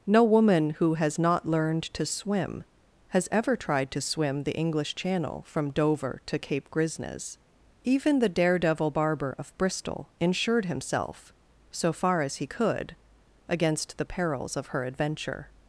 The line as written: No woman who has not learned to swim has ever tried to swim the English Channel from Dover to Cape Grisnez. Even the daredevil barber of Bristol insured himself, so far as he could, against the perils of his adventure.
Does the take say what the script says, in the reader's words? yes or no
no